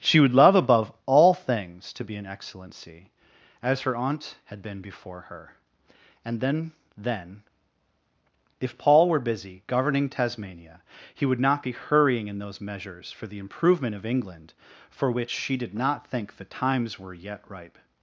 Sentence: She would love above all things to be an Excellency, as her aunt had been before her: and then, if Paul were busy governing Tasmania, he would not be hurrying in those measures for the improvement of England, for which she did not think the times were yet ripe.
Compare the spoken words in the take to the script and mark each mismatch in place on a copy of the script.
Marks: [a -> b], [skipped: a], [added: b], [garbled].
She would love above all things to be an Excellency, as her aunt had been before her: and then, [added: then] if Paul were busy governing Tasmania, he would not be hurrying in those measures for the improvement of England, for which she did not think the times were yet ripe.